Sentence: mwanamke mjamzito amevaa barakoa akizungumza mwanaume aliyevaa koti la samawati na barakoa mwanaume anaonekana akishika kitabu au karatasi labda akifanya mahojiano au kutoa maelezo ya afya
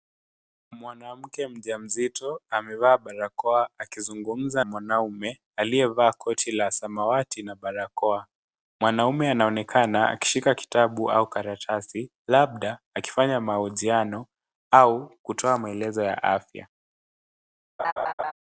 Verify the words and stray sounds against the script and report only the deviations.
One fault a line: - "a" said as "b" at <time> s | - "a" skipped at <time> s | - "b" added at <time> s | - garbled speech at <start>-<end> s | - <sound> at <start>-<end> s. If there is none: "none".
- laugh at 17.8-18.3 s